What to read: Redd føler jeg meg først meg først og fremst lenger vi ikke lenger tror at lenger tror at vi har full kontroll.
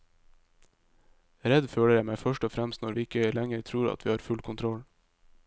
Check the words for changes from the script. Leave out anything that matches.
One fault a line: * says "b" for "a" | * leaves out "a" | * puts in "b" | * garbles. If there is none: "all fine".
* leaves out "meg først"
* says "når" for "lenger"
* leaves out "lenger tror at"